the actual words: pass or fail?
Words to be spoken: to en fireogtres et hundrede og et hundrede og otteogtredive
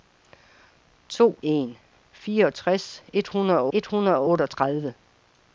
pass